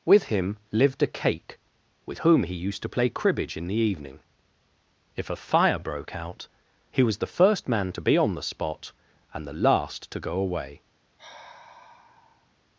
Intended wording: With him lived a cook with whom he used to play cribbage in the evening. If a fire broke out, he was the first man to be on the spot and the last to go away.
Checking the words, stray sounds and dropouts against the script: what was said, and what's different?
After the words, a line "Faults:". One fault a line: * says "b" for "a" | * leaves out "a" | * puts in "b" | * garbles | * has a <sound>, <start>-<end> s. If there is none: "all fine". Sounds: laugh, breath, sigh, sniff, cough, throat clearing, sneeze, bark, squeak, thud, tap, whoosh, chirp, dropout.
With him lived a cake with whom he used to play cribbage in the evening. If a fire broke out, he was the first man to be on the spot and the last to go away.
Faults:
* says "cake" for "cook"
* has a sigh, 11.2-12.5 s